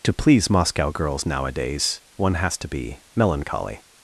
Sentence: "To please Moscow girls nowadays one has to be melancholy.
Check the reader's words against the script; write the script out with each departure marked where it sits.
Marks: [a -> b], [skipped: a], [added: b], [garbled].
"To please Moscow girls nowadays one has to be melancholy.